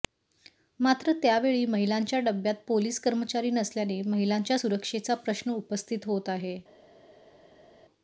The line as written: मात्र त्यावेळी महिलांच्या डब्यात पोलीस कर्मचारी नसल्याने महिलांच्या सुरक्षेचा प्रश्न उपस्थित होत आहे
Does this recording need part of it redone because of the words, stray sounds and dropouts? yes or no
no